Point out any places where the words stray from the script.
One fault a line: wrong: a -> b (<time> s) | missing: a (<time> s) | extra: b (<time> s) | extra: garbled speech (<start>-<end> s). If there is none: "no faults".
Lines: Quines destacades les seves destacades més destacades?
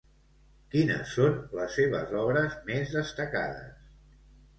wrong: destacades -> són (1.2 s)
wrong: destacades -> obres (2.2 s)